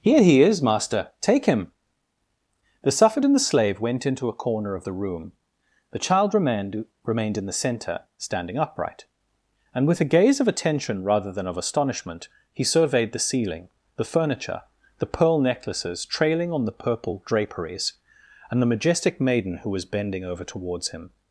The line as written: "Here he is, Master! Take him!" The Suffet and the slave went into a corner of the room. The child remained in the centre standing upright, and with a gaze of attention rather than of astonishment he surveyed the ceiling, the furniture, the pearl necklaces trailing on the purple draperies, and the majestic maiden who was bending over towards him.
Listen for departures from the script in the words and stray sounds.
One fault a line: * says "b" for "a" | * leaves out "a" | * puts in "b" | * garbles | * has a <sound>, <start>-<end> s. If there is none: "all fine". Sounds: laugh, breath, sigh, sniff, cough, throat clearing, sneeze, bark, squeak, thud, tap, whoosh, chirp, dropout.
* puts in "remained"